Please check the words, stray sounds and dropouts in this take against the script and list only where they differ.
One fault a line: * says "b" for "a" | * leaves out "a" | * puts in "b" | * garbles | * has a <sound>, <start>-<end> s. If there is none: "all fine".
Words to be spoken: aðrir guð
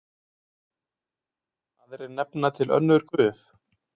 * puts in "nefna til önnur"